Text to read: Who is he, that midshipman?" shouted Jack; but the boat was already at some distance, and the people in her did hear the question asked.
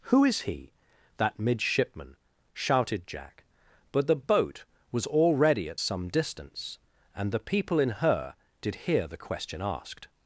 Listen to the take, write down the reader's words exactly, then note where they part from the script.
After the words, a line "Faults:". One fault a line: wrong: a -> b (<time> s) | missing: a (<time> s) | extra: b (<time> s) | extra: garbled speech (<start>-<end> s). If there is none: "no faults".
Who is he, that midshipman?" shouted Jack; but the boat was already at some distance, and the people in her did hear the question asked.
Faults:
no faults